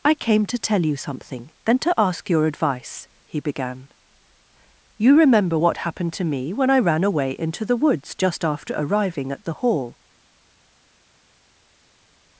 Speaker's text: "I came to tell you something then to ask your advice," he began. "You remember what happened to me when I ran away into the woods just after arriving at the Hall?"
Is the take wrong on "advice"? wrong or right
right